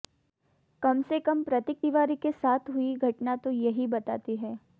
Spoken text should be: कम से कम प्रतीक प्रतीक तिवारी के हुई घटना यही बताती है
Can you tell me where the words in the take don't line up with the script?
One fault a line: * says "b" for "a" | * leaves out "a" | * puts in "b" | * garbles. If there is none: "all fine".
* leaves out "प्रतीक"
* puts in "साथ"
* puts in "तो"